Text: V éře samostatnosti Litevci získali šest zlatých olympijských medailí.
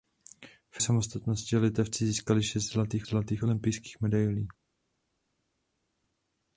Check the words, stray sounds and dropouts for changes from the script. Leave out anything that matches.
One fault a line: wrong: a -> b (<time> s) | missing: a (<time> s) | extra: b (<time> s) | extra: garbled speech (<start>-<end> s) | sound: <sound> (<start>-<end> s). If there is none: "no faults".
missing: éře (0.8 s)
extra: zlatých (3.0 s)